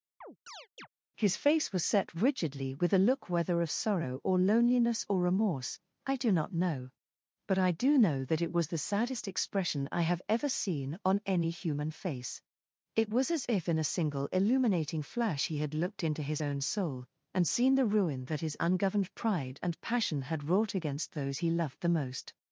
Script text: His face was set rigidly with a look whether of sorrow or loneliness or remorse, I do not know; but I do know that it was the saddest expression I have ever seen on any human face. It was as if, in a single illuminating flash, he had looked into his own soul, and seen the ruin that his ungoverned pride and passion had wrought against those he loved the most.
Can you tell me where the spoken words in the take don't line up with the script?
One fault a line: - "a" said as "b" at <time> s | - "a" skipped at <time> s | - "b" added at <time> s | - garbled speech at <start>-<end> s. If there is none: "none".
none